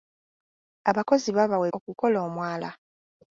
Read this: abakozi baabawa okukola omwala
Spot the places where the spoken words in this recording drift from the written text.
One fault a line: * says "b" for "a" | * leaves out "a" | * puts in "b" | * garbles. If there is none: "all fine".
all fine